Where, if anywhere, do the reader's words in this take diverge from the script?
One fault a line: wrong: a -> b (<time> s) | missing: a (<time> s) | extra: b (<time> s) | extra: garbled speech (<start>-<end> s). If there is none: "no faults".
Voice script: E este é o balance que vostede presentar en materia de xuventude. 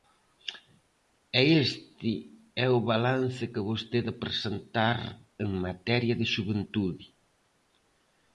no faults